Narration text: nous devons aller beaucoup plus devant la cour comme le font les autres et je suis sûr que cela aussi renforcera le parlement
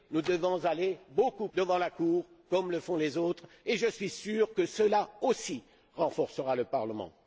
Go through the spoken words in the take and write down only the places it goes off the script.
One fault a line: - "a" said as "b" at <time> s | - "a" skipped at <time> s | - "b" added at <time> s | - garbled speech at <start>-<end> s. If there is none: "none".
- "plus" skipped at 1.5 s